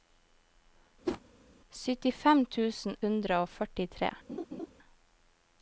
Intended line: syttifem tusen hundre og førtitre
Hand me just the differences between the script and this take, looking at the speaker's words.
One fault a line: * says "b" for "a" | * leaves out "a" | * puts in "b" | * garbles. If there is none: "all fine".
all fine